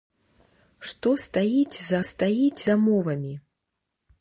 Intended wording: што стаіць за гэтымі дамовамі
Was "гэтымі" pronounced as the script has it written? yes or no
no